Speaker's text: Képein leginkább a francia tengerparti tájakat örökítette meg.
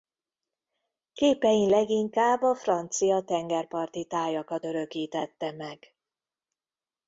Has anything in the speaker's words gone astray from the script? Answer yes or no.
no